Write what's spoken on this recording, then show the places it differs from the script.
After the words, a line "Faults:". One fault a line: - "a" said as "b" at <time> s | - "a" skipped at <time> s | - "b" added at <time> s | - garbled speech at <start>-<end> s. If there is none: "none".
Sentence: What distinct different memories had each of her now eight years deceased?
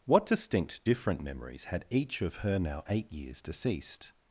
What distinct different memories had each of her now eight years deceased?
Faults:
none